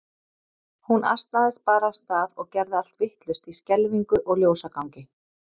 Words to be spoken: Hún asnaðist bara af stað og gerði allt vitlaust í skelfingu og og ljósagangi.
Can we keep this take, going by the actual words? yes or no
no